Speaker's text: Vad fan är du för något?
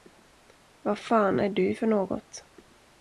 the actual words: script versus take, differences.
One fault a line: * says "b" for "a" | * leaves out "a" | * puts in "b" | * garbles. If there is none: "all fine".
all fine